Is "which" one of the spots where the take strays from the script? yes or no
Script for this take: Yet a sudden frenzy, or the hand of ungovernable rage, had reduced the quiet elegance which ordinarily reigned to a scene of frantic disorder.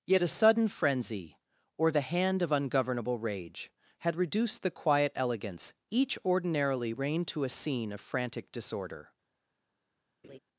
yes